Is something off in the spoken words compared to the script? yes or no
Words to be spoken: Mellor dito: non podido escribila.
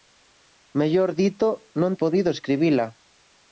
no